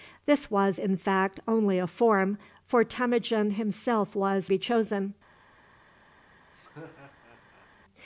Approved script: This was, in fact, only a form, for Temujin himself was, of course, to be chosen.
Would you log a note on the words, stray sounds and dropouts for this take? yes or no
yes